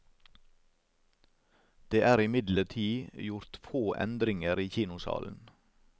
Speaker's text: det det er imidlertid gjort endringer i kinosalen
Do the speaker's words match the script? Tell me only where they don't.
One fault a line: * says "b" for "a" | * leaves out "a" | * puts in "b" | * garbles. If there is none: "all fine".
* leaves out "det"
* puts in "få"